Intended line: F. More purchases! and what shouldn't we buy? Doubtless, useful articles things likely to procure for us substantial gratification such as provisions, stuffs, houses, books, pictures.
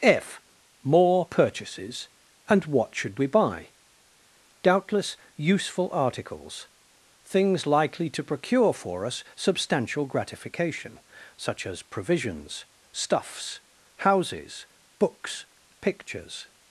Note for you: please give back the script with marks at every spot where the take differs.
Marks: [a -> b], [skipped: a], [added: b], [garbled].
F. More purchases! and what [shouldn't -> should] we buy? Doubtless, useful articles things likely to procure for us substantial gratification such as provisions, stuffs, houses, books, pictures.